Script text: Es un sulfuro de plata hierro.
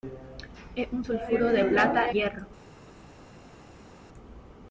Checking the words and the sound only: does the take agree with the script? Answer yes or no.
yes